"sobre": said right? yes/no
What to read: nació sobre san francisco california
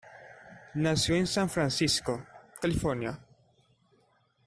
no